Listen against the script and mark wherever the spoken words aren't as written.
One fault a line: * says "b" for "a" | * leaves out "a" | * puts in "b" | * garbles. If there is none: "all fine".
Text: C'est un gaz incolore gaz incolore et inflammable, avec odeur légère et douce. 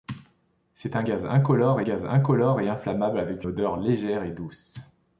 all fine